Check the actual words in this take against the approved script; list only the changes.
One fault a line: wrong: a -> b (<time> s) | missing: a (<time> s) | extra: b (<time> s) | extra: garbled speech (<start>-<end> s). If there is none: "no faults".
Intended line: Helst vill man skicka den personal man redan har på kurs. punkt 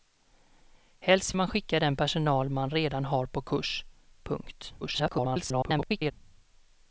missing: vill (1.4 s)
extra: garbled speech (4.8-6.1 s)